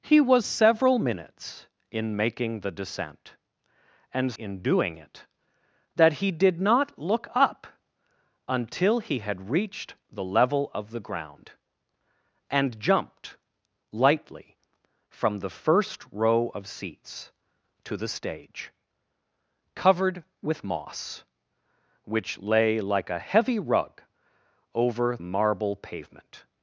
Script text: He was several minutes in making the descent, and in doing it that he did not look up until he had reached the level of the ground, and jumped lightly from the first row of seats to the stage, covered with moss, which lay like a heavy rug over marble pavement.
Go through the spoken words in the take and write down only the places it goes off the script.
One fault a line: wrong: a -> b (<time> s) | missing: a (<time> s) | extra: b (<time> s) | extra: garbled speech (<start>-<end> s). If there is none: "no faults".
no faults